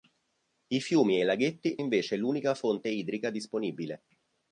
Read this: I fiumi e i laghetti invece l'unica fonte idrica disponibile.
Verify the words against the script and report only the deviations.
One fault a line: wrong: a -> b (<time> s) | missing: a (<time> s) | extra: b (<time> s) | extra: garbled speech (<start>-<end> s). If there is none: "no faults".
no faults